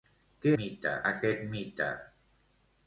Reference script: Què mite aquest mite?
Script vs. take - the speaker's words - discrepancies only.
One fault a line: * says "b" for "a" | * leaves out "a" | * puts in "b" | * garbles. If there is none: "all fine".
all fine